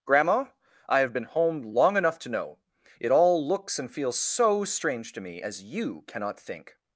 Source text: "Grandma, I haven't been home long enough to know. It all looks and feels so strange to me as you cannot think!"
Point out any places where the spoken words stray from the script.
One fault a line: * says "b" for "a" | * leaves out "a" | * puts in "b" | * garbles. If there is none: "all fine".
* says "have" for "haven't"